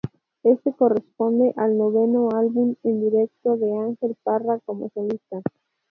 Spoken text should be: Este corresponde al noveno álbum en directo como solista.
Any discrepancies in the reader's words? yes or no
yes